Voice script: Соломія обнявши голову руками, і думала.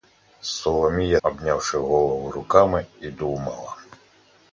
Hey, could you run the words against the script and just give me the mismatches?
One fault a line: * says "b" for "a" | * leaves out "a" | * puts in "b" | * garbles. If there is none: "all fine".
all fine